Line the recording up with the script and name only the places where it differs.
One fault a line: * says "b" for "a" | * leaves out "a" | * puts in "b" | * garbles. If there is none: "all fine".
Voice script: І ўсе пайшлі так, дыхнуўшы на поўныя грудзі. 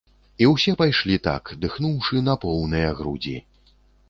all fine